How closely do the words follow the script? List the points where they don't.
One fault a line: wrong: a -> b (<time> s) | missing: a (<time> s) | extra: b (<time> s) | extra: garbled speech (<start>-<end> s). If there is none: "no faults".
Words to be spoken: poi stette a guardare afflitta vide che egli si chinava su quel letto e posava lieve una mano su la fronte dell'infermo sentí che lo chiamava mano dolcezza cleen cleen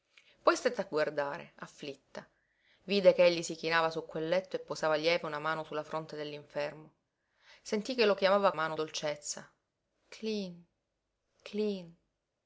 no faults